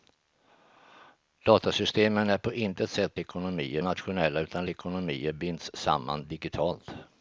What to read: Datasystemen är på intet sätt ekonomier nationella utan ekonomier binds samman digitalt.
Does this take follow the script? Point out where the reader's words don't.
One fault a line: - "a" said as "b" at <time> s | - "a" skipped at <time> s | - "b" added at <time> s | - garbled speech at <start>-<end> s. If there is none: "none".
none